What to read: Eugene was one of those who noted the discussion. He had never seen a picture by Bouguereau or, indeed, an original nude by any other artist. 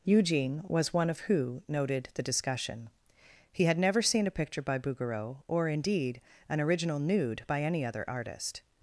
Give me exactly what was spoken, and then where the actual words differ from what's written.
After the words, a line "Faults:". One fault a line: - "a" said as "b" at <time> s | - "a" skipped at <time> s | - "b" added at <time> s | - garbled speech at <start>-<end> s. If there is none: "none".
Eugene was one of who noted the discussion. He had never seen a picture by Bouguereau or, indeed, an original nude by any other artist.
Faults:
- "those" skipped at 1.2 s